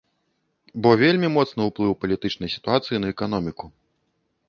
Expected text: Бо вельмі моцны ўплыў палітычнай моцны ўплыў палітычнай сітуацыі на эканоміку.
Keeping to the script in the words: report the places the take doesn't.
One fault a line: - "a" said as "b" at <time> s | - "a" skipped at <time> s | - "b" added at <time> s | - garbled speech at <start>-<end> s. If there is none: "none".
- "моцны ўплыў палітычнай" skipped at 2.5 s